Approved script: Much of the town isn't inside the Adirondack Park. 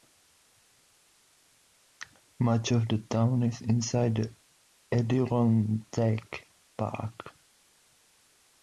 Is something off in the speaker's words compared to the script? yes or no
yes